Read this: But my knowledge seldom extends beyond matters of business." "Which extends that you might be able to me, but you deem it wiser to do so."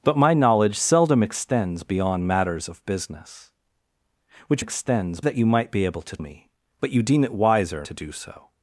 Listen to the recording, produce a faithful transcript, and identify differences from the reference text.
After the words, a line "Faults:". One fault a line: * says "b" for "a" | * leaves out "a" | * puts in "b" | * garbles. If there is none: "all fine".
But my knowledge seldom extends beyond matters of business." "Which extends that you might be able to me, but you deem it wiser to do so."
Faults:
all fine